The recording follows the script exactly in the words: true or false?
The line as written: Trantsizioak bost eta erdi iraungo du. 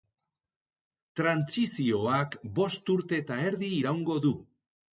false